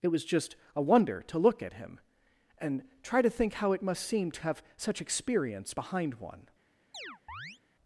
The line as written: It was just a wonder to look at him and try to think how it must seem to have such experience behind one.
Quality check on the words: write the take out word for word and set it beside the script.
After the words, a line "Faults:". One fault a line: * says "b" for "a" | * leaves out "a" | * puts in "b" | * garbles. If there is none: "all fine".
It was just a wonder to look at him and try to think how it must seem to have such experience behind one.
Faults:
all fine